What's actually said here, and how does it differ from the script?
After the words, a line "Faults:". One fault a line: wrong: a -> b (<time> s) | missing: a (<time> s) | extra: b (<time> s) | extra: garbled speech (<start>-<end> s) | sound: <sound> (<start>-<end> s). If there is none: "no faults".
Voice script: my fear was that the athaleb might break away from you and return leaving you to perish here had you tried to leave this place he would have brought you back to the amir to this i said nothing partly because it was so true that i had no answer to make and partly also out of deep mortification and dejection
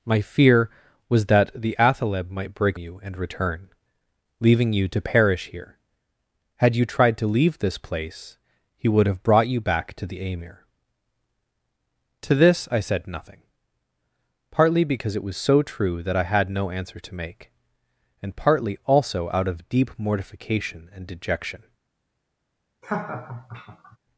my fear was that the athaleb might break you and return leaving you to perish here had you tried to leave this place he would have brought you back to the amir to this i said nothing partly because it was so true that i had no answer to make and partly also out of deep mortification and dejection
Faults:
missing: away from (2.8 s)
sound: laugh (22.8-24.0 s)